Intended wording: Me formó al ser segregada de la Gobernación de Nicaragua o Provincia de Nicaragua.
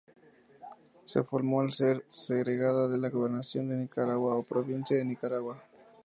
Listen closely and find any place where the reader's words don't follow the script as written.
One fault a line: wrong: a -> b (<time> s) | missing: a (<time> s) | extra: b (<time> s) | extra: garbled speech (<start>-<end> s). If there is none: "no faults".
wrong: Me -> Se (1.1 s)